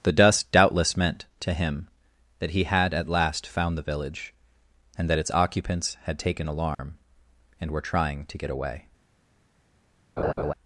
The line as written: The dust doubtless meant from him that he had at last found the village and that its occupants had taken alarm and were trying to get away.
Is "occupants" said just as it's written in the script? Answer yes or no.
yes